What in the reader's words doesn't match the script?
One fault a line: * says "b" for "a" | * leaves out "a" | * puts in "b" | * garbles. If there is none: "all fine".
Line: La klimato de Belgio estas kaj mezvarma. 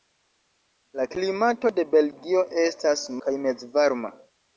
all fine